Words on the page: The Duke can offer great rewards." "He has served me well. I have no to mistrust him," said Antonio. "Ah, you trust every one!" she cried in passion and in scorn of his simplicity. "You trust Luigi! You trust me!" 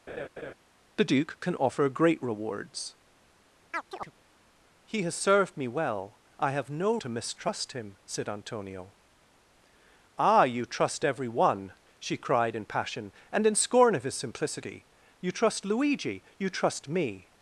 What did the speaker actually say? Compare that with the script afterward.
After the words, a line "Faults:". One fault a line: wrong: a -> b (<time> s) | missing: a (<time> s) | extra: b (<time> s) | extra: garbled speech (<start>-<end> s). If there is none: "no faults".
The Duke can offer great rewards." "He has served me well. I have no to mistrust him," said Antonio. "Ah, you trust every one!" she cried in passion and in scorn of his simplicity. "You trust Luigi! You trust me!"
Faults:
no faults